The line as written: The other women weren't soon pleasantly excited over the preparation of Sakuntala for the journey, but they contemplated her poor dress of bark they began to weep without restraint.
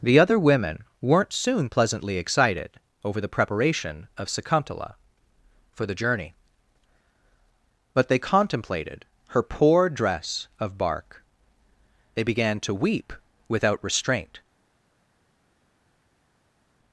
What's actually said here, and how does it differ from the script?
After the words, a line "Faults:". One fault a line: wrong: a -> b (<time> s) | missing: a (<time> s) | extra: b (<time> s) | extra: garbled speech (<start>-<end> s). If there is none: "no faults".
The other women weren't soon pleasantly excited over the preparation of Sakuntala for the journey, but they contemplated her poor dress of bark they began to weep without restraint.
Faults:
no faults